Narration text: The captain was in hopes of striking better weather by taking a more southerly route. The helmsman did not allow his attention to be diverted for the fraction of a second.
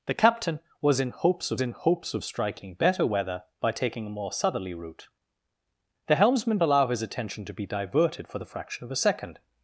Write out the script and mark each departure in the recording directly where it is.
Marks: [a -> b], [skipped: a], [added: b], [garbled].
The captain was in hopes of [added: in hopes of] striking better weather by taking a more southerly route. The helmsman [skipped: did not] allow his attention to be diverted for the fraction of a second.